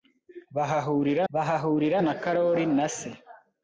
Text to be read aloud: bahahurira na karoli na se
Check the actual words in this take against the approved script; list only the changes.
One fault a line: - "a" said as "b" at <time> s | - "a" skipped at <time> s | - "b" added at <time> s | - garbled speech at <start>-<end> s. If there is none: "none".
- "bahahurira" added at 1.3 s